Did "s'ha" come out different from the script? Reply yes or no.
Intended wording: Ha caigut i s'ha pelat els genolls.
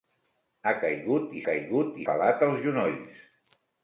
yes